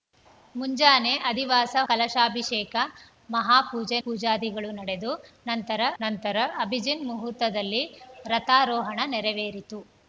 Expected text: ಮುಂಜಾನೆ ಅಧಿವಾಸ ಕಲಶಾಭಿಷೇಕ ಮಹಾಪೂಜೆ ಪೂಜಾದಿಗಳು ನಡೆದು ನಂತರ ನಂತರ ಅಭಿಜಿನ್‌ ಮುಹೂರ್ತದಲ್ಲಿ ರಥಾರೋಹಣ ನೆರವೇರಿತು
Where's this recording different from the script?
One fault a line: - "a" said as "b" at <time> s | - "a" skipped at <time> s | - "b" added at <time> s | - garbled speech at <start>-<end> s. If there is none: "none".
none